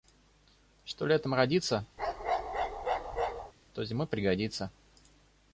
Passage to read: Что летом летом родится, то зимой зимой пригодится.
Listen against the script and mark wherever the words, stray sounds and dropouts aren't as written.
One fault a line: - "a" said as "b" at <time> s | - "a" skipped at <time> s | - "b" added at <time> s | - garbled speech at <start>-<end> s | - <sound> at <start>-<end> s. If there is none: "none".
- "летом" skipped at 1.4 s
- bark at 2.0-3.5 s
- "зимой" skipped at 4.1 s